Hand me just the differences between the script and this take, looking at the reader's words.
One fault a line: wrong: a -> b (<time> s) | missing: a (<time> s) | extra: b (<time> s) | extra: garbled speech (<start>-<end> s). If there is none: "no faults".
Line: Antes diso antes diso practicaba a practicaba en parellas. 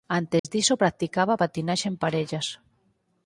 missing: antes diso (0.8 s)
wrong: practicaba -> patinaxe (1.4 s)